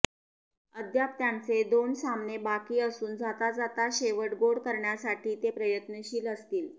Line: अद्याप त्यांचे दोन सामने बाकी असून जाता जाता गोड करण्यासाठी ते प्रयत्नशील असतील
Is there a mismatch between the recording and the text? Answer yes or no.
yes